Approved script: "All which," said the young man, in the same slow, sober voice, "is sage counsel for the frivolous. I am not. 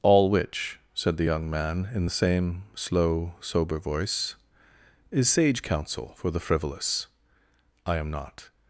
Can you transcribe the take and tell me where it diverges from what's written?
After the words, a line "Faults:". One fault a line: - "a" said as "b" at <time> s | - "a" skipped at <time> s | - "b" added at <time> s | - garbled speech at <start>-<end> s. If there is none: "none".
"All which," said the young man, in the same slow, sober voice, "is sage counsel for the frivolous. I am not.
Faults:
none